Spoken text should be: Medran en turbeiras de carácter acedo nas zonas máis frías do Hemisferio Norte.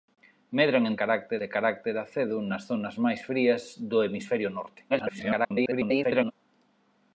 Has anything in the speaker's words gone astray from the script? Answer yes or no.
yes